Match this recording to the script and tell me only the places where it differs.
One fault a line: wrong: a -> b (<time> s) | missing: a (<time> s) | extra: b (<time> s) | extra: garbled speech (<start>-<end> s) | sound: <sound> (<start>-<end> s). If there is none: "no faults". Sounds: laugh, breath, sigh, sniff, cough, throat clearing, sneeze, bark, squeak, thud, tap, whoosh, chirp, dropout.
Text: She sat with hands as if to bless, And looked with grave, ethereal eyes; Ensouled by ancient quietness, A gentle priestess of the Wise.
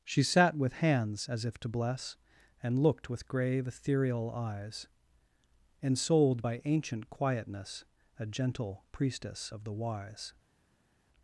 no faults